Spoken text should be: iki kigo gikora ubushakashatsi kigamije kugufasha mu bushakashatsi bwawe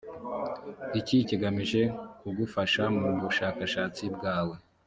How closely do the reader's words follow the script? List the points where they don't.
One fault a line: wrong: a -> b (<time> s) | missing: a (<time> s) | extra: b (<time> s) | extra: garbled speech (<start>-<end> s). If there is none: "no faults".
missing: kigo gikora ubushakashatsi (1.2 s)